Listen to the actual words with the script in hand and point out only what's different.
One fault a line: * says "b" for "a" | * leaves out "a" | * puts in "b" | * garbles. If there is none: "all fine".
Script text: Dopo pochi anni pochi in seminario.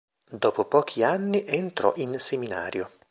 * says "entrò" for "pochi"